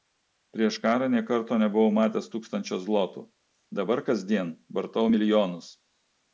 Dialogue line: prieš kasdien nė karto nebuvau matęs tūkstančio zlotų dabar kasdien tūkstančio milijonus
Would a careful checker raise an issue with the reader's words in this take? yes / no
yes